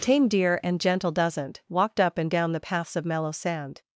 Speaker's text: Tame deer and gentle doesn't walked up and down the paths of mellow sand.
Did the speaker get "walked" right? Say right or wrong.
right